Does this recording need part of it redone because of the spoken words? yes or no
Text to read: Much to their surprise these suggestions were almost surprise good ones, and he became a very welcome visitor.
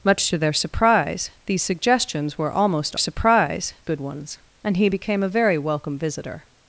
no